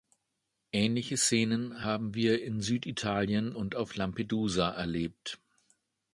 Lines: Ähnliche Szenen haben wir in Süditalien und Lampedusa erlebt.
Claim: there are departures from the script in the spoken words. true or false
true